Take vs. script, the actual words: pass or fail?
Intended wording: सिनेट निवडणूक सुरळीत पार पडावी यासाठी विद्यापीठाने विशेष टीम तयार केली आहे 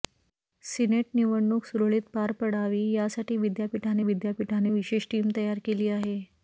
fail